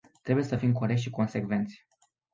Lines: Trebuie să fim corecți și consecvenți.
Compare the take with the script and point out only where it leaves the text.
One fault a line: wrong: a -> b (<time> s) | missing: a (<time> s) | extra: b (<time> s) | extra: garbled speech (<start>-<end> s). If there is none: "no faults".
no faults